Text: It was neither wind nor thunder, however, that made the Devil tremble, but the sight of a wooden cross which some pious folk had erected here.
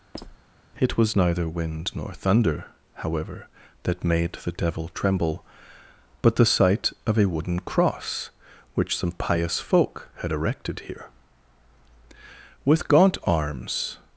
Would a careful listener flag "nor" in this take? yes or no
no